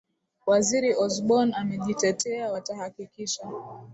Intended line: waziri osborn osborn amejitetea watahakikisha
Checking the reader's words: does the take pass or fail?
fail